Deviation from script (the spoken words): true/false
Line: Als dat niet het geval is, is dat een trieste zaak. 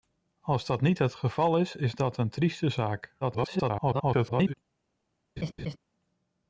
true